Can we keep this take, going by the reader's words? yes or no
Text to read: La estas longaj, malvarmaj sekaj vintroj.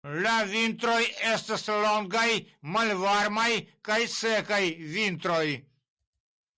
no